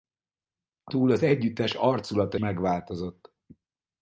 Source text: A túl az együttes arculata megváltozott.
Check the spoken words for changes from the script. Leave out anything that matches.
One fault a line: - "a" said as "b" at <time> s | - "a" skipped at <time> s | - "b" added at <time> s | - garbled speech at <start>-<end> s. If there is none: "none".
none